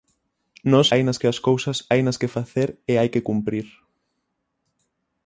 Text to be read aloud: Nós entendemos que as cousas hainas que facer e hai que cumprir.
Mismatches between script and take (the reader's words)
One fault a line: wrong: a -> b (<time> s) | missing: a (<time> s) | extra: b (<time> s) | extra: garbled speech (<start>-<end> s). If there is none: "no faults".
wrong: entendemos -> hainas (0.9 s)